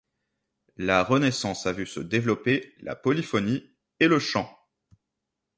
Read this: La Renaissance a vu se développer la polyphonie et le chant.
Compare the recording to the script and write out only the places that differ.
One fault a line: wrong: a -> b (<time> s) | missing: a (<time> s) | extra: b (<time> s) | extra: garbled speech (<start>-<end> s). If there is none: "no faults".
no faults